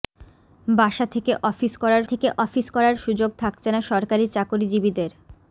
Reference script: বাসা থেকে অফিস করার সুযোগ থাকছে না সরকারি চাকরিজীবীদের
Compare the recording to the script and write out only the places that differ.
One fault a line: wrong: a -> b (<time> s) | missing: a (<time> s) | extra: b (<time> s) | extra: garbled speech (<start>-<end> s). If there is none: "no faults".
extra: থেকে অফিস করার (2.0 s)